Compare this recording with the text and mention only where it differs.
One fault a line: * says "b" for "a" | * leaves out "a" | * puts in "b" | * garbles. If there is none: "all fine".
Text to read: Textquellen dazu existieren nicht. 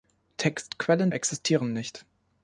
* leaves out "dazu"